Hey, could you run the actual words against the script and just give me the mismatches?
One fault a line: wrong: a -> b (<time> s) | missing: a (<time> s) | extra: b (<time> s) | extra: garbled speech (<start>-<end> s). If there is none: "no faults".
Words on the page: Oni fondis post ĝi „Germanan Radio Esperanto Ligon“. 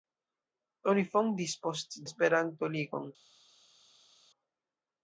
missing: ĝi Germanan Radio (2.0 s)